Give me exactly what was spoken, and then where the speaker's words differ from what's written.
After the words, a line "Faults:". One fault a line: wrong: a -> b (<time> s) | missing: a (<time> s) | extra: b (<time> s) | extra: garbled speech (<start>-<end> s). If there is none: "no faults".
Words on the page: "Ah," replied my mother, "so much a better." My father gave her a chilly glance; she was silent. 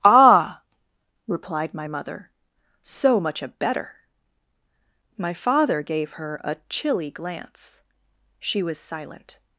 "Ah," replied my mother, "so much a better." My father gave her a chilly glance; she was silent.
Faults:
no faults